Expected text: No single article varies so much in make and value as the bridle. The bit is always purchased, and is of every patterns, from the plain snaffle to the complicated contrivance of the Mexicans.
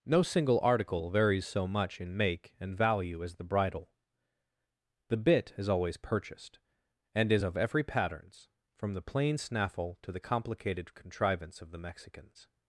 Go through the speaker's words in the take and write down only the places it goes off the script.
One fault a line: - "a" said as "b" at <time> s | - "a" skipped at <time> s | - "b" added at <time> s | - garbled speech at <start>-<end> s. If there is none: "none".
none